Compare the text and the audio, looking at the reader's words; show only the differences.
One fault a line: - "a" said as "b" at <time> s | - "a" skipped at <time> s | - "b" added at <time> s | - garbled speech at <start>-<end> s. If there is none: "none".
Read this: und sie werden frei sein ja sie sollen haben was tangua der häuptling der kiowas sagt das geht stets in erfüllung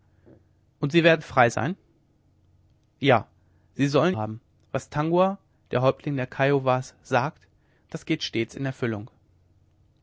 none